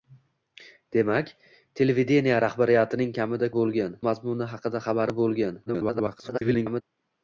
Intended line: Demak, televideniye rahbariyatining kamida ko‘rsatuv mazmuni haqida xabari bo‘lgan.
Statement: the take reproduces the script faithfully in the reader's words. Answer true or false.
false